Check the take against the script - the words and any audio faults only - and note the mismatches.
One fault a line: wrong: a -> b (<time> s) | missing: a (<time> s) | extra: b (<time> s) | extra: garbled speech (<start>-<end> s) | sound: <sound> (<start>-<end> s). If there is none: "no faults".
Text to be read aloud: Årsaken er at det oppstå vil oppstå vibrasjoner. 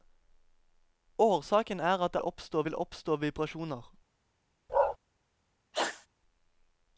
sound: bark (4.7-5.0 s)
sound: sneeze (5.7-6.1 s)